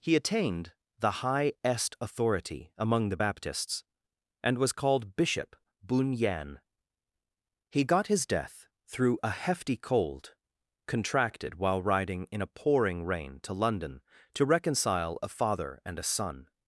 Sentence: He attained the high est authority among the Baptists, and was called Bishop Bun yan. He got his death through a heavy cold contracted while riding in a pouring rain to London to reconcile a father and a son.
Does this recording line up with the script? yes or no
no